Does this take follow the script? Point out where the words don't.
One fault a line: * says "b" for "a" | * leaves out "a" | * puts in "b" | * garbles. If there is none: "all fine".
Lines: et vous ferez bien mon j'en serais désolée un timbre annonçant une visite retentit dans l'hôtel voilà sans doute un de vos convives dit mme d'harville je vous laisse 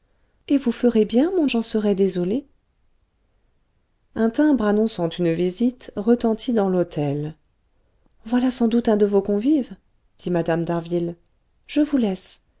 all fine